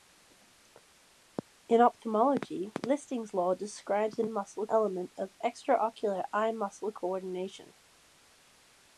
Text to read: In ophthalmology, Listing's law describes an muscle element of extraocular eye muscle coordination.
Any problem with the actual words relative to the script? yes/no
no